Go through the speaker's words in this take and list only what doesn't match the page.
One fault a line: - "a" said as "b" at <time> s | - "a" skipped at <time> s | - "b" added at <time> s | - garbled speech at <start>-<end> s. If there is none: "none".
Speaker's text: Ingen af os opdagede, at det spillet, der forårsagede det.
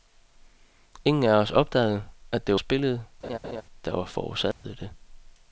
none